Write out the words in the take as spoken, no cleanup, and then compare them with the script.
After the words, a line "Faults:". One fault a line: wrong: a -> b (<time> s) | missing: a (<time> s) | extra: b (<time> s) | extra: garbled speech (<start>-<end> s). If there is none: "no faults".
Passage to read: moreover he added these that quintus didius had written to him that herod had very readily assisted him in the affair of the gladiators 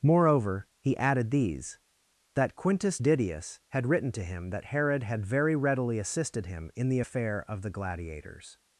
moreover he added these that quintus didius had written to him that herod had very readily assisted him in the affair of the gladiators
Faults:
no faults